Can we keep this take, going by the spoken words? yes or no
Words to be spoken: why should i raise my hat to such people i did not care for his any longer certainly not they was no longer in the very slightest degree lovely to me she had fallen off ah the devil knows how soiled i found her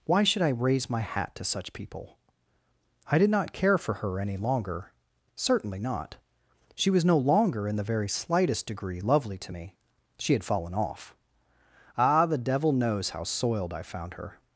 no